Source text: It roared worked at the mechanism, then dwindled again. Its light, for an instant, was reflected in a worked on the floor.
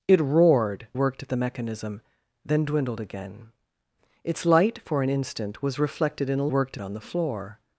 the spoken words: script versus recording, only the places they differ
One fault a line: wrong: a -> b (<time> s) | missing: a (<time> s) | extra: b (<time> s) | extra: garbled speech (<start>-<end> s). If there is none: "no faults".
no faults